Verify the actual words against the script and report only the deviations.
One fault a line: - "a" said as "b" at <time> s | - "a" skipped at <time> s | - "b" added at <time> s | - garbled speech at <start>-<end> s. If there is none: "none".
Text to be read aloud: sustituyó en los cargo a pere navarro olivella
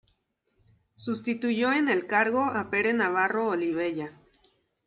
- "los" said as "el" at 1.9 s